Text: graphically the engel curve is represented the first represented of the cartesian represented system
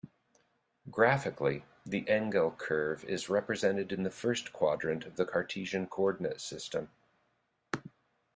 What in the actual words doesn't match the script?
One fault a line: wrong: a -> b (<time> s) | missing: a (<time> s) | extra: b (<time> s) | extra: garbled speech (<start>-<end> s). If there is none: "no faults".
extra: in (3.9 s)
wrong: represented -> quadrant (4.5 s)
wrong: represented -> coordinate (5.9 s)